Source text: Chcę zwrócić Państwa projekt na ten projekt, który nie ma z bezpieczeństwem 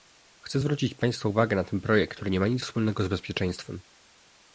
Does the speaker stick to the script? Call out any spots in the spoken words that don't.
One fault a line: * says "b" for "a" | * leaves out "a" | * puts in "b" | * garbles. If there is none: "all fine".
* says "uwagę" for "projekt"
* puts in "nic wspólnego"